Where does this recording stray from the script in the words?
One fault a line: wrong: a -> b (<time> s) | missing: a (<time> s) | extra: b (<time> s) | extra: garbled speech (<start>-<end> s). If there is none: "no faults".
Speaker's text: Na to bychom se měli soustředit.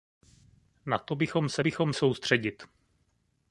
wrong: měli -> bychom (1.6 s)